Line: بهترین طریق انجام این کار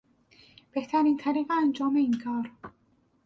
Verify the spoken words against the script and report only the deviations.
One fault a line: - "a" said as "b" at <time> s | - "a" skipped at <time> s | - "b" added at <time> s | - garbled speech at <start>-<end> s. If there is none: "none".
none